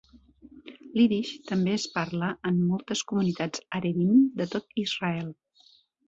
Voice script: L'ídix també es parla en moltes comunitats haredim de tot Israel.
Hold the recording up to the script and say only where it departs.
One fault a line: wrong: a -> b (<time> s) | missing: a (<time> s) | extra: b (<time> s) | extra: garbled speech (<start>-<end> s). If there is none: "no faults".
no faults